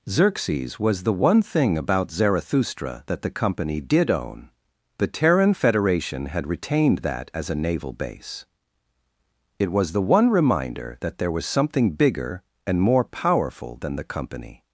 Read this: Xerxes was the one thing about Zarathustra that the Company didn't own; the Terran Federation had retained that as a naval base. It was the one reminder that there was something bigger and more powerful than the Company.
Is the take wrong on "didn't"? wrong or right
wrong